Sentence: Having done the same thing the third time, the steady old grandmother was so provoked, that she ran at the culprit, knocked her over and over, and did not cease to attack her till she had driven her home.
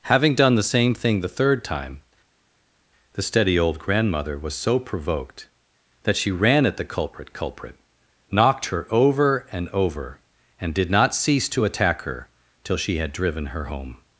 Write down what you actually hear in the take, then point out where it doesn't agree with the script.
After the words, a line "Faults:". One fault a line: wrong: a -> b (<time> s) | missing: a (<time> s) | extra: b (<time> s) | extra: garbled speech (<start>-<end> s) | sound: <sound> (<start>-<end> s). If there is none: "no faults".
Having done the same thing the third time, the steady old grandmother was so provoked, that she ran at the culprit culprit, knocked her over and over, and did not cease to attack her till she had driven her home.
Faults:
extra: culprit (7.3 s)